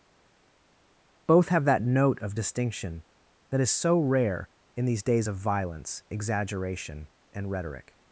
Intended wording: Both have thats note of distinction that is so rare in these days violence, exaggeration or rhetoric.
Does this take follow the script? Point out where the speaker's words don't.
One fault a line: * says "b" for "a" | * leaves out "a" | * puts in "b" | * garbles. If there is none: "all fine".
* says "that" for "thats"
* puts in "of"
* says "and" for "or"